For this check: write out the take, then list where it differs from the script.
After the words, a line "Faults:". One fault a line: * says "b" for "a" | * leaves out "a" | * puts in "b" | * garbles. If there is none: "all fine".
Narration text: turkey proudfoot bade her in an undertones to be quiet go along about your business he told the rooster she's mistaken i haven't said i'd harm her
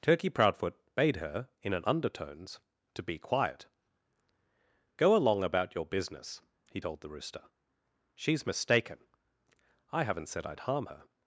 turkey proudfoot bade her in an undertones to be quiet go along about your business he told the rooster she's mistaken i haven't said i'd harm her
Faults:
all fine